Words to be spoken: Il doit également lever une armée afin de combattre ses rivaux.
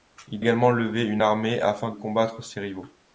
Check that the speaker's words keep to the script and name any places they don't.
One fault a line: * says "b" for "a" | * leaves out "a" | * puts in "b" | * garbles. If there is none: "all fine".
* leaves out "doit"
* leaves out "de"